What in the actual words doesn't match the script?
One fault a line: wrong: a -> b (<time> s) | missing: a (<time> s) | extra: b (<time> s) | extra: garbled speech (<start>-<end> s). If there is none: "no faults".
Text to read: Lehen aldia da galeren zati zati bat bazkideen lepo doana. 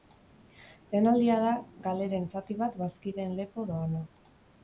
missing: zati (2.6 s)